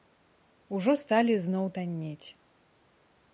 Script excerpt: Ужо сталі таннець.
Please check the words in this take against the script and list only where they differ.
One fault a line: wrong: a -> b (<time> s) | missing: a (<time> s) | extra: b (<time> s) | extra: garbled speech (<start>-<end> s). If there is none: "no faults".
extra: зноў (1.4 s)